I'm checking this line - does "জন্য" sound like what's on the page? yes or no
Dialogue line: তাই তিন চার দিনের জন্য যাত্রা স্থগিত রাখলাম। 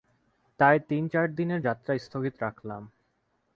no